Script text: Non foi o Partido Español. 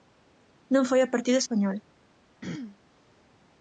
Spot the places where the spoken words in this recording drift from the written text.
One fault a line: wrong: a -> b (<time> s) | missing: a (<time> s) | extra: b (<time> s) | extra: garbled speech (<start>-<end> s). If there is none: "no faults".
no faults